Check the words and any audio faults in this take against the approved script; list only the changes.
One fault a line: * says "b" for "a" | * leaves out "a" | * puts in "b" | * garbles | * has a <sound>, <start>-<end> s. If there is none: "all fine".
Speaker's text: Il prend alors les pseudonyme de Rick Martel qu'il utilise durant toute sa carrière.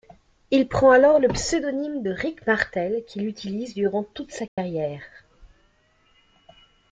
* says "le" for "les"
* has a dropout, 4.5-4.6 s